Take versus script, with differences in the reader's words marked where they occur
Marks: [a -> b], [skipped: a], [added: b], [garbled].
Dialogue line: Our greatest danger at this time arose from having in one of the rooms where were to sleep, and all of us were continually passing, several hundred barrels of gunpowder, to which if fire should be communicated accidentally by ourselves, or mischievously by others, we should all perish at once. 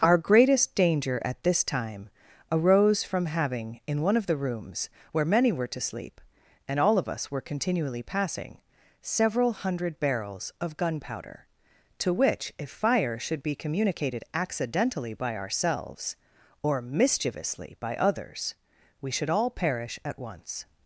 Our greatest danger at this time arose from having in one of the rooms where [added: many] were to sleep, and all of us were continually passing, several hundred barrels of gunpowder, to which if fire should be communicated accidentally by ourselves, or mischievously by others, we should all perish at once.